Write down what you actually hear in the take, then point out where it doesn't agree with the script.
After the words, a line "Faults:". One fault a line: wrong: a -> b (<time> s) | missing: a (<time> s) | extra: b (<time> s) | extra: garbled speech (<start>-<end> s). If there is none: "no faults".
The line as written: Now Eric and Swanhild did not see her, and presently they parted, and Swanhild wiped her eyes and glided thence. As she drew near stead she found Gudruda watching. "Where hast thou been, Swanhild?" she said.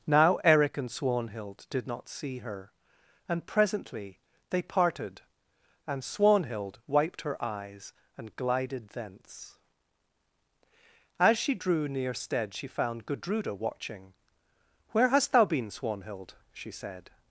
Now Eric and Swanhild did not see her, and presently they parted, and Swanhild wiped her eyes and glided thence. As she drew near stead she found Gudruda watching. "Where hast thou been, Swanhild?" she said.
Faults:
no faults